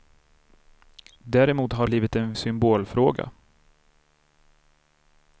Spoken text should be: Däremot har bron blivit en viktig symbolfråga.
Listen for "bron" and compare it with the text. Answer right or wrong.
wrong